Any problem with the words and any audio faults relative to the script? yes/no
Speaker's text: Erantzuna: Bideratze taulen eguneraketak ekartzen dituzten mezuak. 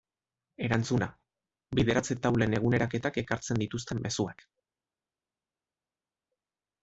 no